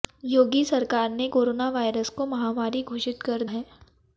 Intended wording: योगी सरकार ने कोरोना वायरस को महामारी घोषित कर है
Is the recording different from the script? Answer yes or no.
no